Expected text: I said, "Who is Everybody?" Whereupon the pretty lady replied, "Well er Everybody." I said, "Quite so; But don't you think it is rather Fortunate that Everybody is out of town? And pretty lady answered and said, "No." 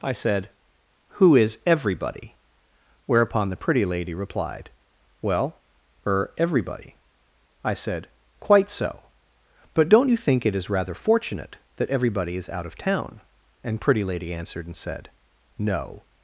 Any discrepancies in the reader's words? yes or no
no